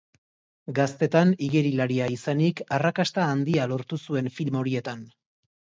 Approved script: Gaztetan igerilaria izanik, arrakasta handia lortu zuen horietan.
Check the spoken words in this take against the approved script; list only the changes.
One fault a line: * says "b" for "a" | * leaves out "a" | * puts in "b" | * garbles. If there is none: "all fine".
* puts in "film"